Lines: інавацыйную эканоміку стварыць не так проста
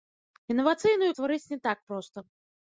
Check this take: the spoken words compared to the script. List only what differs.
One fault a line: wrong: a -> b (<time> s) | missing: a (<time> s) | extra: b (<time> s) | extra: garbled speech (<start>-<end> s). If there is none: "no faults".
missing: эканоміку (1.1 s)